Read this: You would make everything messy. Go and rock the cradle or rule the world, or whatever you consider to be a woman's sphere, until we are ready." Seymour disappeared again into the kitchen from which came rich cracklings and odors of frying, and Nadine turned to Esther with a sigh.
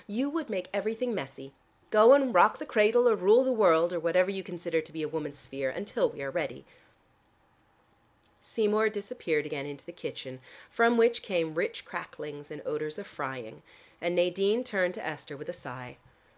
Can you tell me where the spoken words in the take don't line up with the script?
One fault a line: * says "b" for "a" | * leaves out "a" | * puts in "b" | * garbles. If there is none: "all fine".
all fine